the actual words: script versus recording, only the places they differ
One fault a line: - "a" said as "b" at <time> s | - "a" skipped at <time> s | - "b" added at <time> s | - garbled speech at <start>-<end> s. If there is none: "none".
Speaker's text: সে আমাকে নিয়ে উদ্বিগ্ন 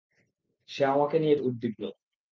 none